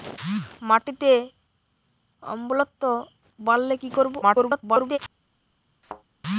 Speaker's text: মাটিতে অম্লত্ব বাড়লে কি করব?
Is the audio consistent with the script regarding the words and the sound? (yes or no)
no